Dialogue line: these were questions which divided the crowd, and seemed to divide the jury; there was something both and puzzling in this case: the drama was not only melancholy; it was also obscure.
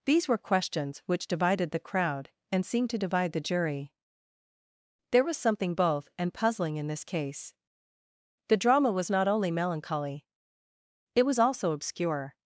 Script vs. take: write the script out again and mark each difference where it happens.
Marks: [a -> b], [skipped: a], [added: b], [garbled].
these were questions which divided the crowd, and seemed to divide the jury; there was something both and puzzling in this case: the drama was not only melancholy; it was also obscure.